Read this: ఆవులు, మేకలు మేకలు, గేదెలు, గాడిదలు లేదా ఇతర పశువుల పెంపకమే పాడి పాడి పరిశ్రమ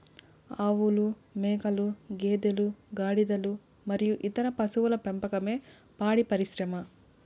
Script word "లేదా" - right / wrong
wrong